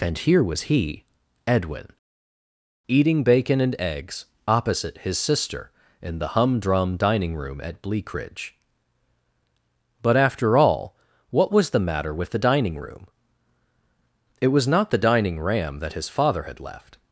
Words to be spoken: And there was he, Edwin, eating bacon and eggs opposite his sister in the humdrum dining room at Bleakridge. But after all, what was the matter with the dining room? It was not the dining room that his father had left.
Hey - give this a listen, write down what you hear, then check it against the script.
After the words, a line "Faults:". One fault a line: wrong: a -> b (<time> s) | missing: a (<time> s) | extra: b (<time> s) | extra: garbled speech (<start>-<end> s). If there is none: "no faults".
And here was he, Edwin, eating bacon and eggs opposite his sister in the humdrum dining room at Bleakridge. But after all, what was the matter with the dining room? It was not the dining ram that his father had left.
Faults:
wrong: there -> here (0.2 s)
wrong: room -> ram (15.4 s)